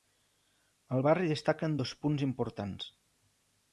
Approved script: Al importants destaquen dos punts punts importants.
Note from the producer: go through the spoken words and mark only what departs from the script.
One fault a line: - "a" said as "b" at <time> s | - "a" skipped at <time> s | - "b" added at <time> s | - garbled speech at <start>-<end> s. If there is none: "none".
- "importants" said as "barri" at 1.1 s
- "punts" skipped at 2.3 s